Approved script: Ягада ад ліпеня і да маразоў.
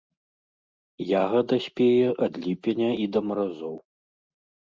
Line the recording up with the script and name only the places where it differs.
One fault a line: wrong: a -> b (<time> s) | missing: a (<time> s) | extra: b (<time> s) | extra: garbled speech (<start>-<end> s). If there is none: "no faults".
extra: спее (1.6 s)